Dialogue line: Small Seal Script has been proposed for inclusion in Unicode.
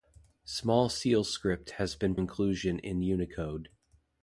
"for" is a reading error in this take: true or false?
true